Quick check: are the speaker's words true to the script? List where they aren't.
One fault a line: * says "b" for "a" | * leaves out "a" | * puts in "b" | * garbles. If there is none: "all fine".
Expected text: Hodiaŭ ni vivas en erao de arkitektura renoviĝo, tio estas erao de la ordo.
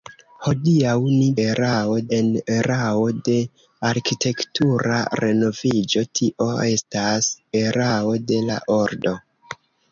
* says "erao" for "vivas"